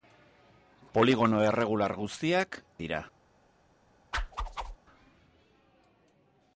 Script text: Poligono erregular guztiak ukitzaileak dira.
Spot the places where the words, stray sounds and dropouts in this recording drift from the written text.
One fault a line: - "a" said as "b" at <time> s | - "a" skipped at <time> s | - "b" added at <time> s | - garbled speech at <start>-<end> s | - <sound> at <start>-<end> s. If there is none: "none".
- "ukitzaileak" skipped at 2.6 s
- whoosh at 4.1-4.8 s